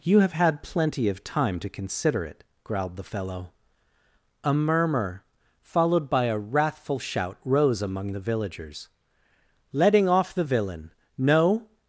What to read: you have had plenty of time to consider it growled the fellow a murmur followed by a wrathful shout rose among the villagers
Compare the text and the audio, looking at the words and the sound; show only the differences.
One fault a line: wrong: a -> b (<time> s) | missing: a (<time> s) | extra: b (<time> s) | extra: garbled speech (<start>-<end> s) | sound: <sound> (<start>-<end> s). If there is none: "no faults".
extra: letting off the villain no (9.7 s)